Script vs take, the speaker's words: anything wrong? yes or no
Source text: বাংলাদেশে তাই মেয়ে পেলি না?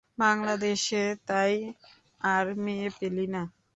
yes